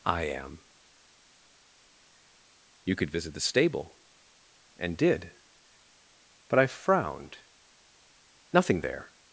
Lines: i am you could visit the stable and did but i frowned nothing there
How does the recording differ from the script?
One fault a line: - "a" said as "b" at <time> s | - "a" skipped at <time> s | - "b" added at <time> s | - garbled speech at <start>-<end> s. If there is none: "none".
none